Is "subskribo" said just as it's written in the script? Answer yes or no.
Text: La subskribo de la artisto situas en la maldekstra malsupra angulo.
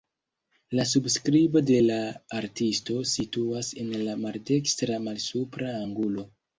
yes